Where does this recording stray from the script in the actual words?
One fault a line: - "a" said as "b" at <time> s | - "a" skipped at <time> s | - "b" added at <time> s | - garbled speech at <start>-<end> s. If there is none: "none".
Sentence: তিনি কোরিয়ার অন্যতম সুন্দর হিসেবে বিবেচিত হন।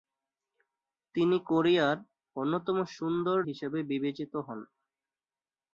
none